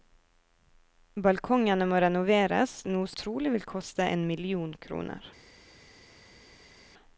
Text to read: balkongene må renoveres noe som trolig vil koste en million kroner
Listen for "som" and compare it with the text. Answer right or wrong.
wrong